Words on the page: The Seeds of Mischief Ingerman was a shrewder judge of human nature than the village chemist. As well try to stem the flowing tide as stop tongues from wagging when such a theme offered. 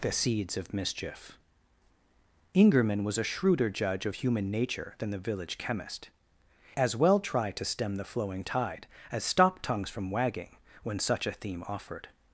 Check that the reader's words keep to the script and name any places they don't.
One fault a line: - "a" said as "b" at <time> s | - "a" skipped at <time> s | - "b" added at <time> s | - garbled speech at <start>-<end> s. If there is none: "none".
none